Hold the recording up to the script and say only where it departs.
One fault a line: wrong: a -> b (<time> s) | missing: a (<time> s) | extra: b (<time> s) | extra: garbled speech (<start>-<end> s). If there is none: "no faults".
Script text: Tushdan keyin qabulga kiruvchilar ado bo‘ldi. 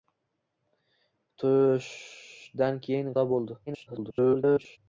missing: qabulga kiruvchilar (3.1 s)
extra: garbled speech (3.7-4.8 s)